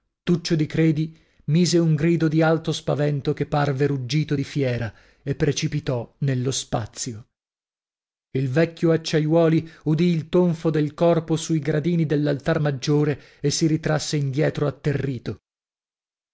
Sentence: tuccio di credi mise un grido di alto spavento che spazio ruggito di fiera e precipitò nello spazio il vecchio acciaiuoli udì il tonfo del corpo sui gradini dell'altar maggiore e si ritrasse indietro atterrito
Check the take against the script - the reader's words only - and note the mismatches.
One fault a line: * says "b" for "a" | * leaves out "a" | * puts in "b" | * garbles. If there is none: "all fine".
* says "parve" for "spazio"